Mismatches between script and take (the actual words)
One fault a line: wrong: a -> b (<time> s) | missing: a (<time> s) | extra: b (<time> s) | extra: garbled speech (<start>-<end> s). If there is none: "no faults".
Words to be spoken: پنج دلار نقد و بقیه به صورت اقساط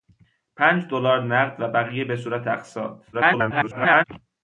extra: garbled speech (3.1-4.0 s)